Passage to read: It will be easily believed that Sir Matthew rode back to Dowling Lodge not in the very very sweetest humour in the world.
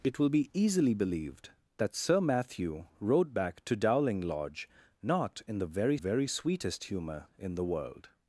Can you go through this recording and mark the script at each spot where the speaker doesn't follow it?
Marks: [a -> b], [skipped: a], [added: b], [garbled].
It will be easily believed that Sir Matthew rode back to Dowling Lodge not in the very very sweetest humour in the world.